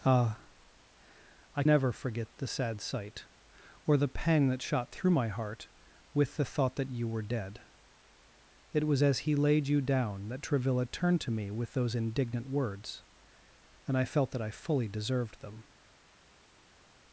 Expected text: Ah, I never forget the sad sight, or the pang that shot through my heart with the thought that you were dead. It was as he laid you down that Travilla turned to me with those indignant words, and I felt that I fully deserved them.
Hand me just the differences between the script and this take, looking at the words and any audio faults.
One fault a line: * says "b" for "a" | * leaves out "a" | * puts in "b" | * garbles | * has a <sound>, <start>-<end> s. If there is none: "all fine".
all fine